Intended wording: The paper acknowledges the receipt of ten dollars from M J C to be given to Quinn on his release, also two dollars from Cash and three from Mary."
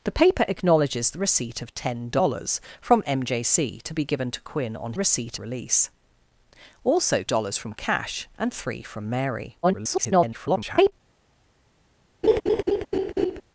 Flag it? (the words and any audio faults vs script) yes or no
yes